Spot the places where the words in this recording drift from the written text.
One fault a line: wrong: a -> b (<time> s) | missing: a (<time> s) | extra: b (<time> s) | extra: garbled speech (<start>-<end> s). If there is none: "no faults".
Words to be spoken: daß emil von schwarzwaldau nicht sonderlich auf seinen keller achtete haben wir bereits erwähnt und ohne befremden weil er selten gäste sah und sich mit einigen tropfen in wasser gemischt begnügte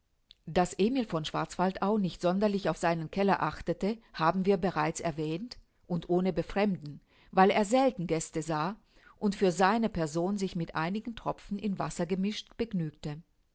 extra: für seine person (9.3 s)